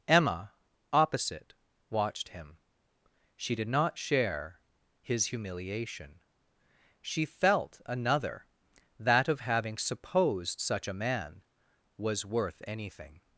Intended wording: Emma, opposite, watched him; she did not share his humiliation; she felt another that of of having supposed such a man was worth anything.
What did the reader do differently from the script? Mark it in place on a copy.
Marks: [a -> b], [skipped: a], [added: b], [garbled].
Emma, opposite, watched him; she did not share his humiliation; she felt another that of [skipped: of] having supposed such a man was worth anything.